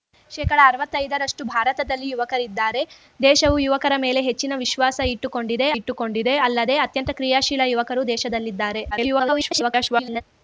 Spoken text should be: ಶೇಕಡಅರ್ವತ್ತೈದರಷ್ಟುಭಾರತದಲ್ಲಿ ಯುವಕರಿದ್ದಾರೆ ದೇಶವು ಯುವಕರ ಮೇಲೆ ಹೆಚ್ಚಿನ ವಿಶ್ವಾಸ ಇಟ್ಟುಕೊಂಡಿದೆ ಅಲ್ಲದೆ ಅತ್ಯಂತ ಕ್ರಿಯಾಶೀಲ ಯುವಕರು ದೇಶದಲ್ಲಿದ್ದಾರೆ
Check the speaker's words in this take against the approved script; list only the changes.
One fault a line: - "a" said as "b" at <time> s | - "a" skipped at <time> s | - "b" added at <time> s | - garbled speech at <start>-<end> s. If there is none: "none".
- "ಇಟ್ಟುಕೊಂಡಿದೆ" added at 5.8 s
- garbled speech at 8.9-10.2 s